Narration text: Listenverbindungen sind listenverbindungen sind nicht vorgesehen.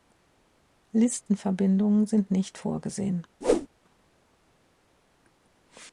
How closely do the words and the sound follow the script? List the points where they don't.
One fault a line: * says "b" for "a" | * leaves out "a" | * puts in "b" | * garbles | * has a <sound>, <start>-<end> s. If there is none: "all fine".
* leaves out "listenverbindungen sind"
* has a whoosh, 3.4-3.7 s